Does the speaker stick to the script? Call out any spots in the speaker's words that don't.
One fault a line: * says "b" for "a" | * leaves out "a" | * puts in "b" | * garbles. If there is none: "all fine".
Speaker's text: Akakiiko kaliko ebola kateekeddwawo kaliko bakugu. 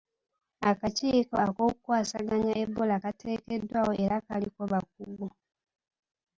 * says "ak'okukwasaganya" for "kaliko"
* puts in "era"